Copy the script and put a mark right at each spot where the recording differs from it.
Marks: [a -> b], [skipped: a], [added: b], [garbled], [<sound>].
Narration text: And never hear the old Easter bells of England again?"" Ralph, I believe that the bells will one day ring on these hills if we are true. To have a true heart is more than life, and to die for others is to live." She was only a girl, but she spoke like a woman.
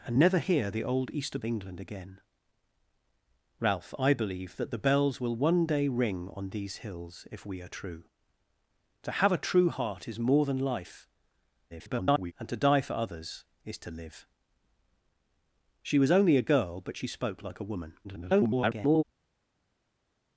And never hear the old Easter [skipped: bells of] England again?"" Ralph, I believe that the bells will one day ring on these hills if we are true. To have a true heart is more than life, [garbled] and to die for others is to live." She was only a girl, but she spoke like a woman. [garbled]